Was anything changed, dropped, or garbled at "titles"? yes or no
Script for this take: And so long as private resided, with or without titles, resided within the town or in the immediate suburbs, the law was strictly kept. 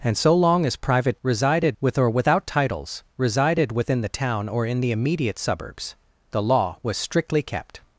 no